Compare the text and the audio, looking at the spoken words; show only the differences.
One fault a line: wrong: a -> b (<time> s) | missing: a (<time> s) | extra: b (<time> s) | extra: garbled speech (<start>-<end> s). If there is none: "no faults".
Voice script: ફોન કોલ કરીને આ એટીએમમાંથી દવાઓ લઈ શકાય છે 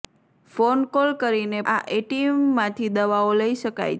no faults